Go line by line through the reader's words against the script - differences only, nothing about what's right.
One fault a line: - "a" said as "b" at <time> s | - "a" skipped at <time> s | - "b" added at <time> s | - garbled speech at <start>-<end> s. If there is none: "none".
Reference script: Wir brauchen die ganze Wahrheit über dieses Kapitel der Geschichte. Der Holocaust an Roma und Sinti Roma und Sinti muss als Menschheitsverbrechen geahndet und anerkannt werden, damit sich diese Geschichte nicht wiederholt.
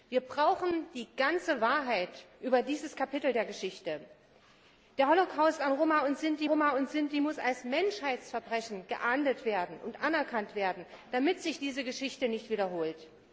none